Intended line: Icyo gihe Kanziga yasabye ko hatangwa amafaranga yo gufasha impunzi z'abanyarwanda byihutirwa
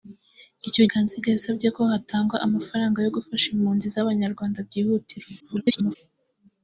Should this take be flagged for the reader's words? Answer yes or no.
yes